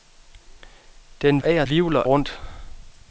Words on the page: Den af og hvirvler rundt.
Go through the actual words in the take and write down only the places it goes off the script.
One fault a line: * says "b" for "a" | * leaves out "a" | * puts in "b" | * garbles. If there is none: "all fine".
all fine